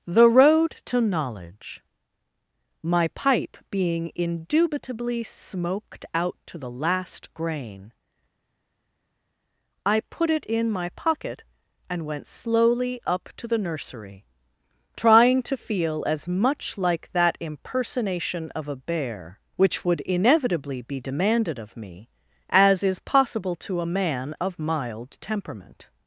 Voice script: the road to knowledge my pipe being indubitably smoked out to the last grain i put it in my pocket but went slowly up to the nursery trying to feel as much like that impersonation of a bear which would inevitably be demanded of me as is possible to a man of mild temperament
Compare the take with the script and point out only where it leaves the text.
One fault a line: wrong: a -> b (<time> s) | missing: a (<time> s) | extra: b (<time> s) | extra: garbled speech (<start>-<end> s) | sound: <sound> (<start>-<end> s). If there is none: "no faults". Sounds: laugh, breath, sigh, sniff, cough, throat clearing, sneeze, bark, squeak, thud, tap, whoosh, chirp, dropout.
wrong: but -> and (11.9 s)